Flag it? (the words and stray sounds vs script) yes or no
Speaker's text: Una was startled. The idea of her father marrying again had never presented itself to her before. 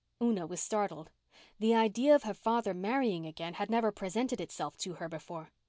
no